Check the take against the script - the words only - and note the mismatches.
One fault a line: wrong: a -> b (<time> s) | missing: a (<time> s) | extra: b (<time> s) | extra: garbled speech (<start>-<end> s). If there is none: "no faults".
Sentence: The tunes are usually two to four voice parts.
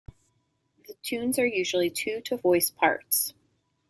missing: four (2.4 s)